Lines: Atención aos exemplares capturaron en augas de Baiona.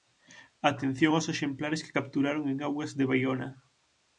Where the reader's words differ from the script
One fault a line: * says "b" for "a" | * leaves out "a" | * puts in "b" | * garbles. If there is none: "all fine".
* puts in "que"